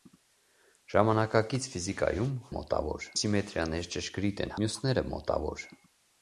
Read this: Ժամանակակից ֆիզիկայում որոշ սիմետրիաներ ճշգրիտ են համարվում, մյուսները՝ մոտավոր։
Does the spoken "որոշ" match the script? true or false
false